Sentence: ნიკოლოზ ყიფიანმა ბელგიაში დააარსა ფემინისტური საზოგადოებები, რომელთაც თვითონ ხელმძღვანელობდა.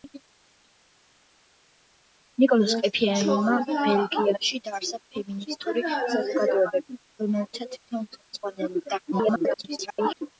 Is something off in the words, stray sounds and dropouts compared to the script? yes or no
yes